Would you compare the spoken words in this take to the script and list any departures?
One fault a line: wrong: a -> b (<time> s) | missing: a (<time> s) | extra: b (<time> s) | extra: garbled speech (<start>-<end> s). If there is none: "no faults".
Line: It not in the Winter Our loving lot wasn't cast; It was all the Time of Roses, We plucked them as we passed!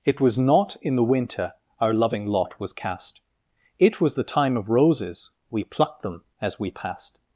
extra: was (0.2 s)
wrong: wasn't -> was (2.6 s)
missing: all (4.2 s)